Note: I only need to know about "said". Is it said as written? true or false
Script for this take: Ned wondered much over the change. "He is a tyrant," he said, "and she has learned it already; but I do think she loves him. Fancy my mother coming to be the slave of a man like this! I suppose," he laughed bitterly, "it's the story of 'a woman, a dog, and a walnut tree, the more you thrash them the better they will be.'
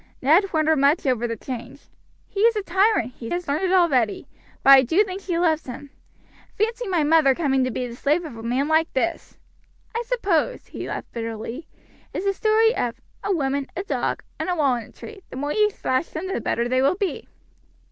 false